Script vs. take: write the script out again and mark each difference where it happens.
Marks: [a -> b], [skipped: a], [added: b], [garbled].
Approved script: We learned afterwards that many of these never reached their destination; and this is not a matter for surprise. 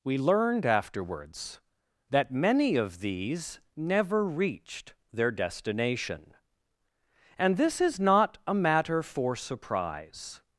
We learned afterwards that many of these never reached their destination; and this is not a matter for surprise.